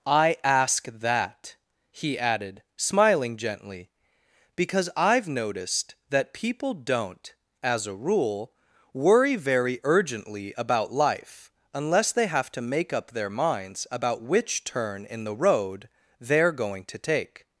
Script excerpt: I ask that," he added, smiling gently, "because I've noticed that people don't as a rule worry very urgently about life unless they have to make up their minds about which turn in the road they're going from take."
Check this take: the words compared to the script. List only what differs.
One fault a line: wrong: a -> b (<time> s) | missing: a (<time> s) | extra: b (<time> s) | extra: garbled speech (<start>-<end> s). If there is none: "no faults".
wrong: from -> to (16.9 s)